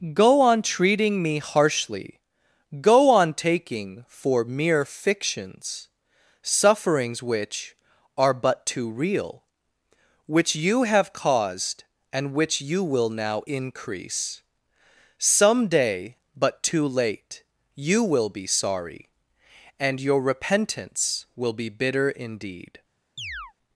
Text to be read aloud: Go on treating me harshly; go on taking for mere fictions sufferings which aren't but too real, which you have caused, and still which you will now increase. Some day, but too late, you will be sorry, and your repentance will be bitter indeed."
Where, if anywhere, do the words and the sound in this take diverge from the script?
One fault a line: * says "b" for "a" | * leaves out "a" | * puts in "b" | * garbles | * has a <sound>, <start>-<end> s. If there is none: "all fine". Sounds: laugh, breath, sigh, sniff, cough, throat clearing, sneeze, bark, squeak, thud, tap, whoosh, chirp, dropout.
* says "are" for "aren't"
* leaves out "still"
* has a chirp, 23.2-23.5 s